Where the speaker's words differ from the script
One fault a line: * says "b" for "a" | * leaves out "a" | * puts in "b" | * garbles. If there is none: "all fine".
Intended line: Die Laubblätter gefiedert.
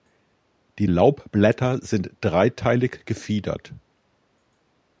* puts in "sind dreiteilig"